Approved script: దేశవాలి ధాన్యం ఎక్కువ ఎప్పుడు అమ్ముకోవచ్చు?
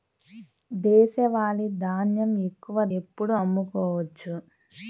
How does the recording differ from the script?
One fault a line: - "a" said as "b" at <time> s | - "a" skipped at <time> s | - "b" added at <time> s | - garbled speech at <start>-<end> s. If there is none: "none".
none